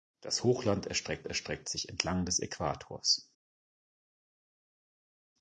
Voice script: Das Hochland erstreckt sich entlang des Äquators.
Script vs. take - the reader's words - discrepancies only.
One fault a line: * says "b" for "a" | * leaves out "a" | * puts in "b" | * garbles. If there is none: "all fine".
* puts in "erstreckt"